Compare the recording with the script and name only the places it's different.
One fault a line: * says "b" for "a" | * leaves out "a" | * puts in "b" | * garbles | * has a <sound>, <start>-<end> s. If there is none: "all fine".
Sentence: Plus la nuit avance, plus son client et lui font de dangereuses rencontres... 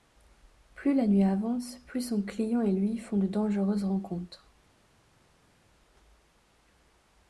all fine